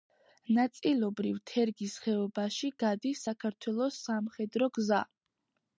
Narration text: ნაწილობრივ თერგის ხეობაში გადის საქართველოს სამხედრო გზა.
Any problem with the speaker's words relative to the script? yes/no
no